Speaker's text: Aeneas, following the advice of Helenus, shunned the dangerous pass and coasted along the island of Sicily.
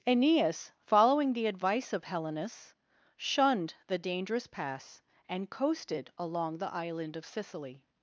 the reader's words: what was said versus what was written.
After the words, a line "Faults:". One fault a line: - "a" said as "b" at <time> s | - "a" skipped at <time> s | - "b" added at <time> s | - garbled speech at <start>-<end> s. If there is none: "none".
Aeneas, following the advice of Helenus, shunned the dangerous pass and coasted along the island of Sicily.
Faults:
none